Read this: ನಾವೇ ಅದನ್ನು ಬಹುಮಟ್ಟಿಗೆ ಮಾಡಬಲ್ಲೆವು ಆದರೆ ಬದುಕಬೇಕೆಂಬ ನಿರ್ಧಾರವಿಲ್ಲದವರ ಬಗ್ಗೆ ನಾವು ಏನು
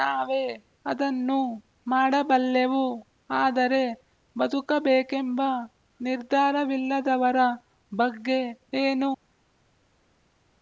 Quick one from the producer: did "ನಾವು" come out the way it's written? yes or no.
no